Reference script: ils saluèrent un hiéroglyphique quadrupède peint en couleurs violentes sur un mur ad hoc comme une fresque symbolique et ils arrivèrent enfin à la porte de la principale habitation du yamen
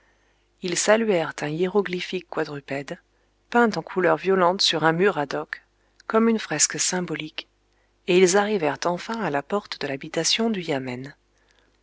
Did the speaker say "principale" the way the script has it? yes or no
no